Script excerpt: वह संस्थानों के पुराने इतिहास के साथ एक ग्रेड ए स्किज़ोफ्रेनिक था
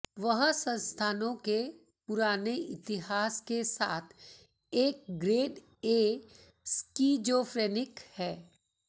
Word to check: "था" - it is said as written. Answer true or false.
false